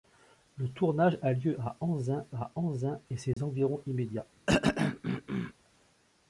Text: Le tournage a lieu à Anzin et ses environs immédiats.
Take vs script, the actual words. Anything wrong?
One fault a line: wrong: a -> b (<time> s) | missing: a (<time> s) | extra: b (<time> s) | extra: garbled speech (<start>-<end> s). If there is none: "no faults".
extra: à Anzin (2.3 s)